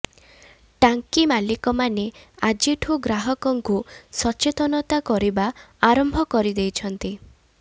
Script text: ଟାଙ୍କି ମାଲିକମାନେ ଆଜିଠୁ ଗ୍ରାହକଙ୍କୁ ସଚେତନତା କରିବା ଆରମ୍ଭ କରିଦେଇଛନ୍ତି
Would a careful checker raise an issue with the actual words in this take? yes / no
no